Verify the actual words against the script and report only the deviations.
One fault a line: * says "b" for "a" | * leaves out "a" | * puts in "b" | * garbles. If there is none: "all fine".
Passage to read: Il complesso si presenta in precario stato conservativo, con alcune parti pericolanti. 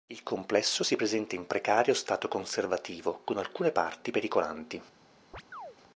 all fine